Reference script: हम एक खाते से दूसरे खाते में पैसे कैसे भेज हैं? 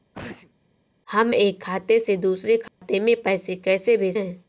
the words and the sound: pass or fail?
fail